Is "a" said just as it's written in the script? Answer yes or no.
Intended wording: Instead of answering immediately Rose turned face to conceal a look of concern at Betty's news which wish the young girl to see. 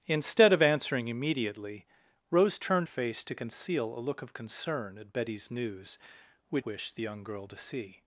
yes